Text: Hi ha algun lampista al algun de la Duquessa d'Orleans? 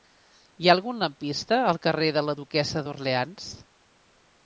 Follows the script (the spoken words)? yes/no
no